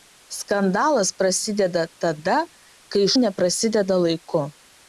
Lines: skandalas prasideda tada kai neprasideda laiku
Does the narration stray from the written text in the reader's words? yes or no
no